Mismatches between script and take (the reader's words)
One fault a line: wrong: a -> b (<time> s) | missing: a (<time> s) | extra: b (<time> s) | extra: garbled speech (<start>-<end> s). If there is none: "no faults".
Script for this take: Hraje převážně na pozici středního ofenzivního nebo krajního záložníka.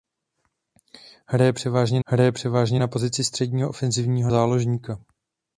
extra: hraje převážně (2.0 s)
missing: nebo krajního (4.3 s)